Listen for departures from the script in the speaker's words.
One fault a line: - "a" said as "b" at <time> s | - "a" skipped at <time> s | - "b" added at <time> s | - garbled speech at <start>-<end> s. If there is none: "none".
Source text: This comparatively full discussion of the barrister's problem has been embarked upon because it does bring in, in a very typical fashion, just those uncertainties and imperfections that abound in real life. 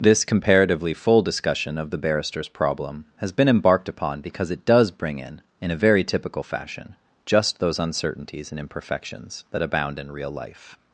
none